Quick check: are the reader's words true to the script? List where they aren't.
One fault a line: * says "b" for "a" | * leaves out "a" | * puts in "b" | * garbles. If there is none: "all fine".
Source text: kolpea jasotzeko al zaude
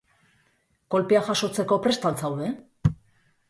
* puts in "prest"